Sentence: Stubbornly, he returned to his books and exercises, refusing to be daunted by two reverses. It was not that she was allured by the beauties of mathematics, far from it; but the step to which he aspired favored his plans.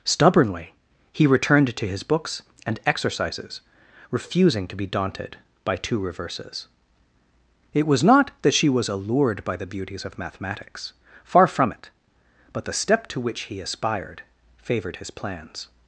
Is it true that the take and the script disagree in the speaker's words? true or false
false